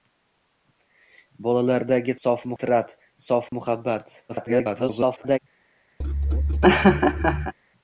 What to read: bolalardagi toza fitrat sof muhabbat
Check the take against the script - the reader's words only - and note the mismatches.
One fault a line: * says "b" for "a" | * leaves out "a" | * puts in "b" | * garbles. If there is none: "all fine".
* says "sof" for "toza"
* garbles